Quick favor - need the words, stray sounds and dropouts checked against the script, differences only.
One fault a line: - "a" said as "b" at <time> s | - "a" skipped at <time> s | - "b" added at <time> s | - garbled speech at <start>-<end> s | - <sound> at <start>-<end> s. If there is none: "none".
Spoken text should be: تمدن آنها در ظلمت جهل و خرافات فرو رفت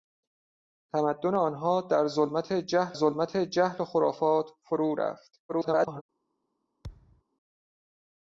- "ظلمت جهل" added at 2.9 s
- garbled speech at 5.5-6.0 s
- thud at 6.8-7.2 s